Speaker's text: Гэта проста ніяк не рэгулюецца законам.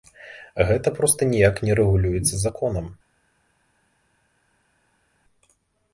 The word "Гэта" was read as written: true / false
true